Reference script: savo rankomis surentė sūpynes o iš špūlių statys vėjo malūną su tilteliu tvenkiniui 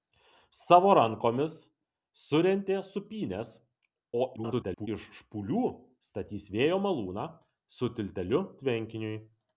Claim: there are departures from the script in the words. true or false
true